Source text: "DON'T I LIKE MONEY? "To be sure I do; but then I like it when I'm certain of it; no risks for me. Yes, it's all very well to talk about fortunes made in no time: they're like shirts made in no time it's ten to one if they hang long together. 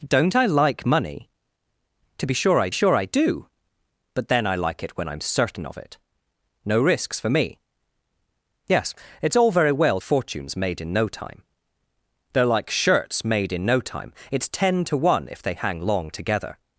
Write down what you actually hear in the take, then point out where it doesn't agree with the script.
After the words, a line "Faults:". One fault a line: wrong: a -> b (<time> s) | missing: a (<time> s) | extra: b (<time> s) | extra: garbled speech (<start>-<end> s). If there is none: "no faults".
"DON'T I LIKE MONEY? "To be sure I sure I do; but then I like it when I'm certain of it; no risks for me. Yes, it's all very well fortunes made in no time: they're like shirts made in no time it's ten to one if they hang long together.
Faults:
extra: sure I (2.7 s)
missing: to talk about (10.0 s)